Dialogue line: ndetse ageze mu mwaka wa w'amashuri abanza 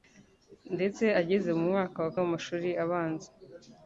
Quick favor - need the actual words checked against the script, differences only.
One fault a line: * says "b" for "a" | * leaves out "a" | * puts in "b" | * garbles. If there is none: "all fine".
all fine